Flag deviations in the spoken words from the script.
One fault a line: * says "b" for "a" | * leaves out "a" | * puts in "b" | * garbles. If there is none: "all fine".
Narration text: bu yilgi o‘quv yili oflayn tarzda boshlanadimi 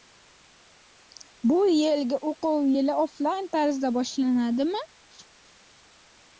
all fine